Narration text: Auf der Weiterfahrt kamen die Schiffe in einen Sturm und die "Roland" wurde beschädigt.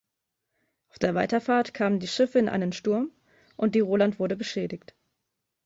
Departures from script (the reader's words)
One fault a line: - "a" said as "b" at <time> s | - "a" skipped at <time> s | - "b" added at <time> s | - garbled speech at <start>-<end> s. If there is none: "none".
none